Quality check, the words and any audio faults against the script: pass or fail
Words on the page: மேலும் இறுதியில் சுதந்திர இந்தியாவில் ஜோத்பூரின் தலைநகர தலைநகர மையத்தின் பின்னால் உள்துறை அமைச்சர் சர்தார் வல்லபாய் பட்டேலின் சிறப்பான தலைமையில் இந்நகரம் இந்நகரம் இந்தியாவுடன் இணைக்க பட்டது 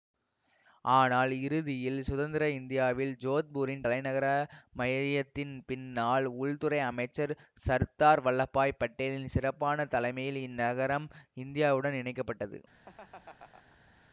fail